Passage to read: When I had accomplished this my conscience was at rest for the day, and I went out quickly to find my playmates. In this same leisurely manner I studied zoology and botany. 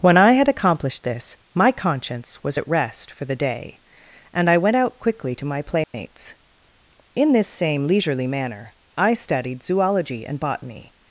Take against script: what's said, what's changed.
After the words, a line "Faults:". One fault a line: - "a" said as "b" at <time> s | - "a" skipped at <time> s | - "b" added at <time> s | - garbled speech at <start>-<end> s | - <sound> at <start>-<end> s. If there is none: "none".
When I had accomplished this my conscience was at rest for the day, and I went out quickly to my playmates. In this same leisurely manner I studied zoology and botany.
Faults:
- "find" skipped at 5.4 s
- dropout at 5.8-5.9 s